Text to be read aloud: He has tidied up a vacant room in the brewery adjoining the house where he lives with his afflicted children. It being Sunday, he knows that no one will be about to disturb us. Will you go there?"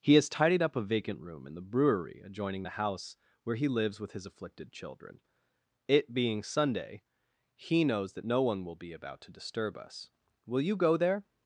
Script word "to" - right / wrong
right